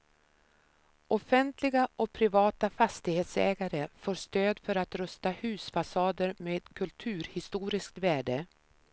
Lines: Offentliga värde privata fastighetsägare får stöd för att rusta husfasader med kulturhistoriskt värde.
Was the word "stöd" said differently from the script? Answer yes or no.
no